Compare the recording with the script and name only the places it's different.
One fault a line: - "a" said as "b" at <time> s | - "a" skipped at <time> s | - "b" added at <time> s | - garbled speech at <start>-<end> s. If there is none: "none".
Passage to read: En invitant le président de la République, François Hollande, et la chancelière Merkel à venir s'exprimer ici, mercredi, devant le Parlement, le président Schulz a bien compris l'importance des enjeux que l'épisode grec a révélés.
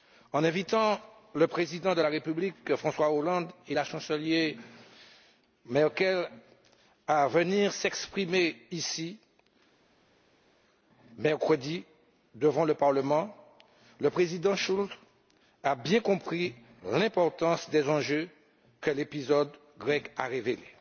none